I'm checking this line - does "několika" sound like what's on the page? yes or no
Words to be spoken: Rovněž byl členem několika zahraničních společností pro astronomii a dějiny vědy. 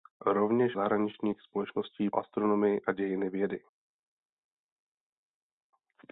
no